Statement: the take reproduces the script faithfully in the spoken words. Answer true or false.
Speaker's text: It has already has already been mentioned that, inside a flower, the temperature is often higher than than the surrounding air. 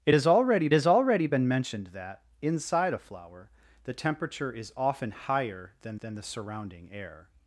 true